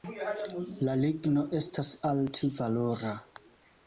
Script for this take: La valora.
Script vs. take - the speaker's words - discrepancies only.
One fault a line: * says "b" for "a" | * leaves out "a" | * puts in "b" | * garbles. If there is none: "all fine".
* puts in "ligno estas alt"